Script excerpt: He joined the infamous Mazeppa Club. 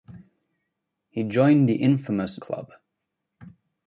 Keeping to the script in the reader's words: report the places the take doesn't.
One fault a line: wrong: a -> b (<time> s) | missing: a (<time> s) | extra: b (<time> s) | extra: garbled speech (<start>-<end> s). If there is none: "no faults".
missing: Mazeppa (2.4 s)